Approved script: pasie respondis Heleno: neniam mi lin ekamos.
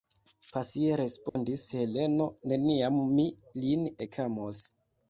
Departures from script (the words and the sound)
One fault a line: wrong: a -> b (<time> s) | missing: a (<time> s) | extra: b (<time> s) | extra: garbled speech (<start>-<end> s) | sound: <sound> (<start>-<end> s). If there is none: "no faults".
sound: dropout (1.3-1.4 s)